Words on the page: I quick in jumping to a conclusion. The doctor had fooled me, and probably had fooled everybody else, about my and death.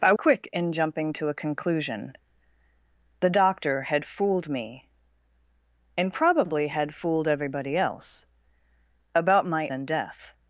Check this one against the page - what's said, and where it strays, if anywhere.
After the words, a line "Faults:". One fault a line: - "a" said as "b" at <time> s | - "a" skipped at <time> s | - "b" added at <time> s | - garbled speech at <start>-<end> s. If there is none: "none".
I quick in jumping to a conclusion. The doctor had fooled me, and probably had fooled everybody else, about my and death.
Faults:
none